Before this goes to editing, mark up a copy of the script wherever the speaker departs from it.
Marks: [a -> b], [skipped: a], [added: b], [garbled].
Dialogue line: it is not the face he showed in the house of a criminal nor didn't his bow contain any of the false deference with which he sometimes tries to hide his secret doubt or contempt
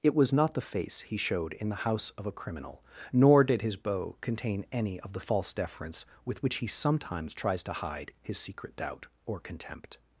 it [is -> was] not the face he showed in the house of a criminal nor [didn't -> did] his bow contain any of the false deference with which he sometimes tries to hide his secret doubt or contempt